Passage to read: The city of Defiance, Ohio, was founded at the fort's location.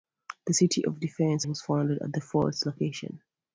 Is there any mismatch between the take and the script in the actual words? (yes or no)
yes